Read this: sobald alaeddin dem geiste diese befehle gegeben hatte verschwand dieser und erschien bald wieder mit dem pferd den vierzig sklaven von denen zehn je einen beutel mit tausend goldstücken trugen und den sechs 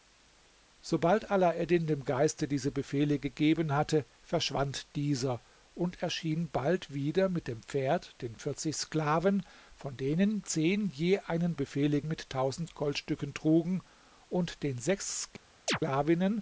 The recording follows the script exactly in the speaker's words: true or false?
false